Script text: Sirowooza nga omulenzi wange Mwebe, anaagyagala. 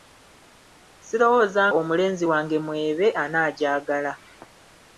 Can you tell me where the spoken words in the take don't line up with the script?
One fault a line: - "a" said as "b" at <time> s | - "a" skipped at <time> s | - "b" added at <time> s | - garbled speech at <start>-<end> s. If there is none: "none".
- "nga" skipped at 1.6 s